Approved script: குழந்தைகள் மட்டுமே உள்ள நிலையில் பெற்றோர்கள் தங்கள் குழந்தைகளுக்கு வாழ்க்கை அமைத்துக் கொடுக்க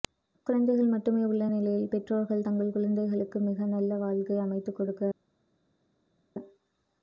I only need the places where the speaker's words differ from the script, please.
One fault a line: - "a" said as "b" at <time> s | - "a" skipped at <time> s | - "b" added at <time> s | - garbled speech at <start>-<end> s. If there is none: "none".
- "மிக நல்ல" added at 3.4 s